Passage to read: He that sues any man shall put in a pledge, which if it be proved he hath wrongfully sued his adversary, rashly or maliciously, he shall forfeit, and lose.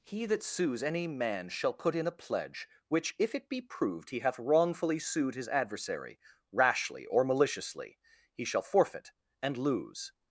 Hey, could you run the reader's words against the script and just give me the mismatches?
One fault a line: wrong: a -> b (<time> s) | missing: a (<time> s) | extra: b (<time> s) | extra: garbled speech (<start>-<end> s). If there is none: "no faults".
no faults